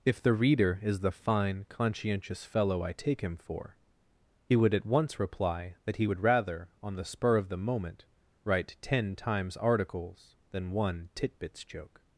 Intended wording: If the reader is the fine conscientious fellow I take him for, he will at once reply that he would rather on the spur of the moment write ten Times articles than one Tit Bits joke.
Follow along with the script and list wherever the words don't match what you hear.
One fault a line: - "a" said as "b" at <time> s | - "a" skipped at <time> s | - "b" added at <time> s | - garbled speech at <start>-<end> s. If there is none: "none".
- "will" said as "would" at 4.5 s